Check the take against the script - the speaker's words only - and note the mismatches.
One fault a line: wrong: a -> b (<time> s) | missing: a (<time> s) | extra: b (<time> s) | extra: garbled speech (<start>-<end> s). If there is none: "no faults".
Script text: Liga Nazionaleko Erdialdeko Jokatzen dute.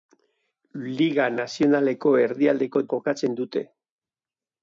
no faults